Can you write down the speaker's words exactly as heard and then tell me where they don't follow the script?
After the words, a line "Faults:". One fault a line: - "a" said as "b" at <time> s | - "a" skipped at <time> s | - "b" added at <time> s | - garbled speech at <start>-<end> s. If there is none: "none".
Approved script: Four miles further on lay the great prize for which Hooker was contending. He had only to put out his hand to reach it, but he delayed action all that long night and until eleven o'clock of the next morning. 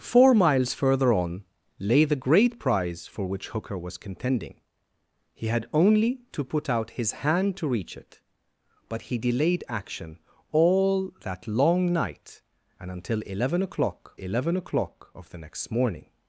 Four miles further on lay the great prize for which Hooker was contending. He had only to put out his hand to reach it, but he delayed action all that long night and until eleven o'clock eleven o'clock of the next morning.
Faults:
- "eleven o'clock" added at 14.2 s